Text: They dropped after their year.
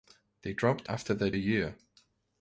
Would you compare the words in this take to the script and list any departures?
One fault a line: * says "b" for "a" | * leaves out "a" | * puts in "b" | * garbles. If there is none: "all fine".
all fine